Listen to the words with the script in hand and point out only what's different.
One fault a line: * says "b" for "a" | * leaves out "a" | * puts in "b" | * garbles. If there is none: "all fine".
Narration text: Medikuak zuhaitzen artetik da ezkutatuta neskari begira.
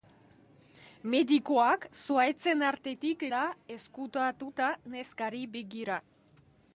all fine